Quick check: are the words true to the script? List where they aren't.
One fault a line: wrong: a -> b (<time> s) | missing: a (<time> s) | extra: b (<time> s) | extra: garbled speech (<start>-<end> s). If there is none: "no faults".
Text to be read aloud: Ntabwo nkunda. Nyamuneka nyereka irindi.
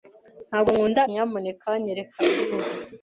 no faults